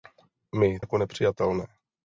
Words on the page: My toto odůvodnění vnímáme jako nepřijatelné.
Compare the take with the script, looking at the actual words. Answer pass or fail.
fail